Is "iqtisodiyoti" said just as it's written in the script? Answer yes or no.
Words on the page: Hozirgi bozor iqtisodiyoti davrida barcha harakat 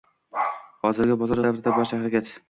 no